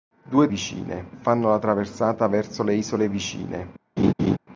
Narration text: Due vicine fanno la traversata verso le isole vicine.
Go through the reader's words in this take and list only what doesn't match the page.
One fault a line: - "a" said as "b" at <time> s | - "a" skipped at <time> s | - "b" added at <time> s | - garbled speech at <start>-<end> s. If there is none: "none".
none